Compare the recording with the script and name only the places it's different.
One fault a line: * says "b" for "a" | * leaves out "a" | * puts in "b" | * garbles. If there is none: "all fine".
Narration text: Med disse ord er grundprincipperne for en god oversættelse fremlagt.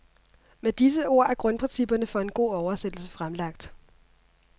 all fine